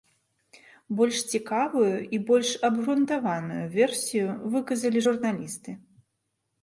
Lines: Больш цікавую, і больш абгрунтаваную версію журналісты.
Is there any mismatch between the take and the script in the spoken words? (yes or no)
yes